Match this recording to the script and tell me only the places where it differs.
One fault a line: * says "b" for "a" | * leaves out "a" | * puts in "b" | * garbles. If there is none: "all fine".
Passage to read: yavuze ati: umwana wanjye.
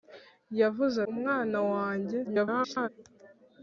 * leaves out "ati"
* garbles